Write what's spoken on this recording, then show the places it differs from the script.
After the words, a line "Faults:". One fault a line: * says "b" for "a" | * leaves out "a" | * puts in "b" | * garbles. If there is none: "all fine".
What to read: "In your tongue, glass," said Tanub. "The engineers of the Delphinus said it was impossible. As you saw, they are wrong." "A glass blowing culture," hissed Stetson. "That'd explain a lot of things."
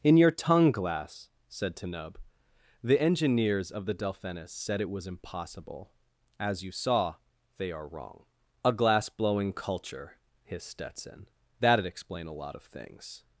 "In your tongue, glass," said Tanub. "The engineers of the Delphinus said it was impossible. As you saw, they are wrong." "A glass blowing culture," hissed Stetson. "That'd explain a lot of things."
Faults:
all fine